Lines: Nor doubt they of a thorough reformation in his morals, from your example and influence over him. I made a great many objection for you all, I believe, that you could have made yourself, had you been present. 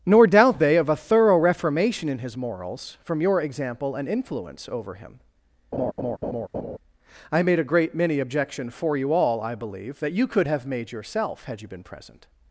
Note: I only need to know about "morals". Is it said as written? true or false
true